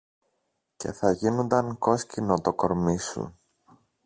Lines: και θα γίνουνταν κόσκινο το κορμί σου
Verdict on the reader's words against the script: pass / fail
pass